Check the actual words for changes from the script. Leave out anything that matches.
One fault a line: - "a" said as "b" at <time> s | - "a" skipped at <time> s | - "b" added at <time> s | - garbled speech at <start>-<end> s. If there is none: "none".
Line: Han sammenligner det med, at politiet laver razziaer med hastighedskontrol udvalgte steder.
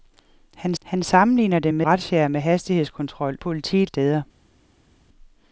- "han" added at 0.8 s
- "at politiet laver" skipped at 1.9 s
- "udvalgte" said as "politiet" at 3.4 s